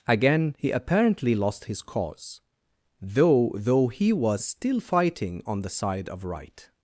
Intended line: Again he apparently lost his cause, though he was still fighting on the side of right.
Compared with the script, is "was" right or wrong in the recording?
right